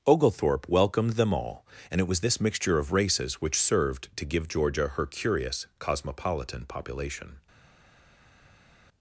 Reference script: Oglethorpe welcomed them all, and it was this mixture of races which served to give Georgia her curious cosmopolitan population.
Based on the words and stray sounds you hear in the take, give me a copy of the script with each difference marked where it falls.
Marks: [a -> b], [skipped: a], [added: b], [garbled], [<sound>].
Oglethorpe welcomed them all, and it was this mixture of races which served to give Georgia her curious cosmopolitan population.